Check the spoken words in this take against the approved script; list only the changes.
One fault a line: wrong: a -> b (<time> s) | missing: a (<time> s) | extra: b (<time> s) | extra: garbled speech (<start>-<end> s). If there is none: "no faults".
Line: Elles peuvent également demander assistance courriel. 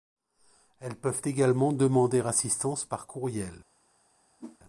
extra: par (2.8 s)